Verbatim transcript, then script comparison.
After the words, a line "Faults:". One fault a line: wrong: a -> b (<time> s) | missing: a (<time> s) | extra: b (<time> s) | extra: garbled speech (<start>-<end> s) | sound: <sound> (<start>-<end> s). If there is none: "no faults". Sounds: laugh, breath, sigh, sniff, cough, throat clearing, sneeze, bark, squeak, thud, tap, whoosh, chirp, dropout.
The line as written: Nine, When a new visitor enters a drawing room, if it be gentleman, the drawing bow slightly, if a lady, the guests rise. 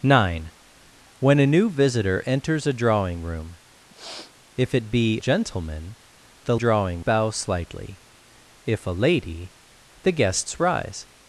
Nine, When a new visitor enters a drawing room, if it be gentleman, the drawing bow slightly, if a lady, the guests rise.
Faults:
sound: sniff (3.9-4.3 s)